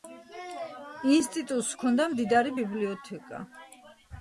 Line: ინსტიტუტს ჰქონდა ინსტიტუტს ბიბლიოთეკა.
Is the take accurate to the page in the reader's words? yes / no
no